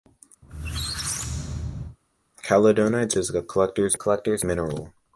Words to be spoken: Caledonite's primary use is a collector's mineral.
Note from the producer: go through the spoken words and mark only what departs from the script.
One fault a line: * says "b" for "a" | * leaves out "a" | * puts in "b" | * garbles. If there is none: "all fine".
* leaves out "primary use"
* puts in "collector's"